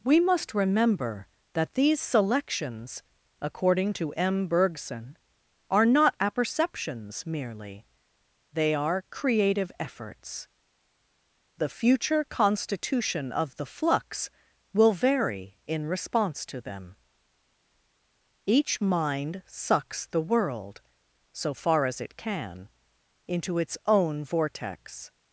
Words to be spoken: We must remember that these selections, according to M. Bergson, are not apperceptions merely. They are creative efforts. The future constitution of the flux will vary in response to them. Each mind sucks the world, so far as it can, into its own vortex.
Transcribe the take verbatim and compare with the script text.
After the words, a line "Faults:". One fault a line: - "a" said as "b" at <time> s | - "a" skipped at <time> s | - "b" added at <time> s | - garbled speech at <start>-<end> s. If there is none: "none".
We must remember that these selections, according to M. Bergson, are not apperceptions merely. They are creative efforts. The future constitution of the flux will vary in response to them. Each mind sucks the world, so far as it can, into its own vortex.
Faults:
none